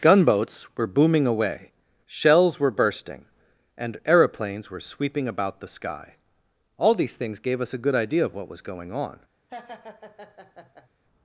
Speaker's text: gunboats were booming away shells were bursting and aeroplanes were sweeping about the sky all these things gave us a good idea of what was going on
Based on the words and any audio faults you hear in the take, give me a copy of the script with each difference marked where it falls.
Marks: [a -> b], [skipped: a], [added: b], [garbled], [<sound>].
gunboats were booming away shells were bursting and aeroplanes were sweeping about the sky all these things gave us a good idea of what was going on [laugh]